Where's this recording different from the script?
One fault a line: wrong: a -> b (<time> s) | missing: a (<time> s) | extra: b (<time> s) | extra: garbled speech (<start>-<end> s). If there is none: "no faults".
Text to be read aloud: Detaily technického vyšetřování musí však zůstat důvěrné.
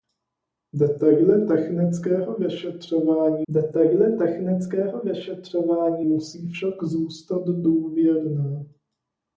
extra: detaily technického vyšetřování (3.5 s)